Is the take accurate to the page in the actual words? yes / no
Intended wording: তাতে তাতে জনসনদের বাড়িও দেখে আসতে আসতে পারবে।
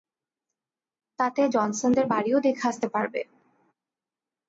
no